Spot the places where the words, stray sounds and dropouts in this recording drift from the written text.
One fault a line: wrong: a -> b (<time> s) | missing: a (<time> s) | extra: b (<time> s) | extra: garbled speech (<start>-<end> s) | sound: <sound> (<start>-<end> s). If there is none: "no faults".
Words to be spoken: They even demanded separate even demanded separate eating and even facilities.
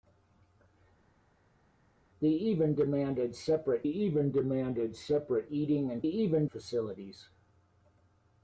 no faults